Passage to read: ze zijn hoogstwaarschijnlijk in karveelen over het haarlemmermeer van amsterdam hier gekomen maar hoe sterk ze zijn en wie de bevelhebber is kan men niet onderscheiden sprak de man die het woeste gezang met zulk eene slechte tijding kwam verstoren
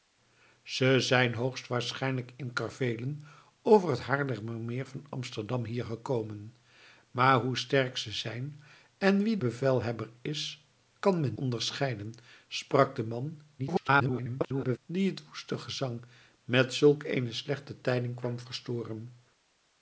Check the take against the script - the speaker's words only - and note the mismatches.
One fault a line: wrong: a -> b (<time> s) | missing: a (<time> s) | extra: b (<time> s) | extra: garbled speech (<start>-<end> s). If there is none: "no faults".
missing: de (9.4 s)
missing: niet (11.4 s)
extra: garbled speech (13.6-14.8 s)